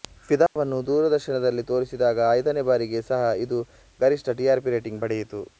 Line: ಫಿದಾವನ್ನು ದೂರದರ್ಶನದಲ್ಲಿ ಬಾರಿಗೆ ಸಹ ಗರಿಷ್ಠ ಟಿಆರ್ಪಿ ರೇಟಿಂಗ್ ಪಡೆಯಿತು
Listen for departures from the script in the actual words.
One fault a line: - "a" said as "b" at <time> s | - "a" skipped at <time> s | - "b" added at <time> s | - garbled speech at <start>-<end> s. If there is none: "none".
- "ತೋರಿಸಿದಾಗ ಐದನೇ" added at 1.7 s
- "ಇದು" added at 3.4 s